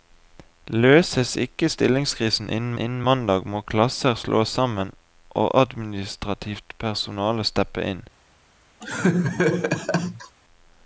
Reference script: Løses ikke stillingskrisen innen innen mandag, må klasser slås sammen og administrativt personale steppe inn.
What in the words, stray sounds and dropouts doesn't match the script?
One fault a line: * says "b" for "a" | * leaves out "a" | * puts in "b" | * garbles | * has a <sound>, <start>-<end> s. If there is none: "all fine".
* has a laugh, 8.8-10.4 s